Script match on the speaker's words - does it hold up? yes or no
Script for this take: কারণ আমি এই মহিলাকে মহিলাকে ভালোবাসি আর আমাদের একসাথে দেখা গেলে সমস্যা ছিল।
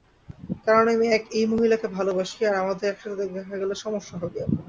no